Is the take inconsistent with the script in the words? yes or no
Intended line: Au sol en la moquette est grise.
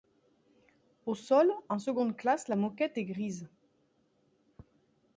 yes